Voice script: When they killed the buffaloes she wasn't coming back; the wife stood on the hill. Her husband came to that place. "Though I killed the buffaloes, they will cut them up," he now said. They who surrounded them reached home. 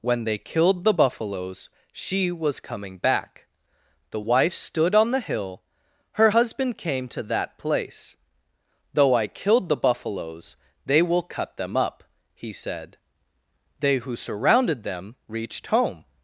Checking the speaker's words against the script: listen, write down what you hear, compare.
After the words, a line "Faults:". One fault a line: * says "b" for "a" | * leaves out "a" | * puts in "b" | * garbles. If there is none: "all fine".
When they killed the buffaloes she was coming back; the wife stood on the hill. Her husband came to that place. "Though I killed the buffaloes, they will cut them up," he said. They who surrounded them reached home.
Faults:
* says "was" for "wasn't"
* leaves out "now"